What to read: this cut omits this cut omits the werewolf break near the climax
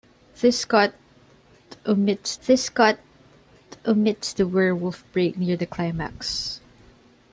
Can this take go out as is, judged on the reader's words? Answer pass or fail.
pass